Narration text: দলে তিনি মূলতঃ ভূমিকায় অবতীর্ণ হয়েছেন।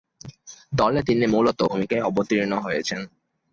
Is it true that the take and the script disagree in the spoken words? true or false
false